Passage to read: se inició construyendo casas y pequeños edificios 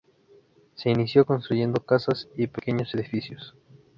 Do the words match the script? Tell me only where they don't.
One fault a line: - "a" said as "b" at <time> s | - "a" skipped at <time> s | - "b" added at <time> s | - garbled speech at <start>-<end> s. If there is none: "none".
none